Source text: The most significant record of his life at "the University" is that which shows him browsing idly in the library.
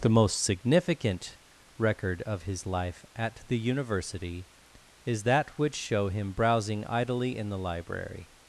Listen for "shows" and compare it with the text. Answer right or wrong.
wrong